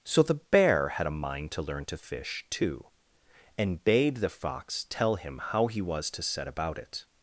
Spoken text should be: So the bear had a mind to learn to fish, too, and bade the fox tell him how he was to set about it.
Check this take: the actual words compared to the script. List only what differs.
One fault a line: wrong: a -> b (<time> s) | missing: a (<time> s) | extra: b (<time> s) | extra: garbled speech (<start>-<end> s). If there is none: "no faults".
no faults